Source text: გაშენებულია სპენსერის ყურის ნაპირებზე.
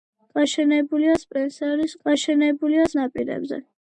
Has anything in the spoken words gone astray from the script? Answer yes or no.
yes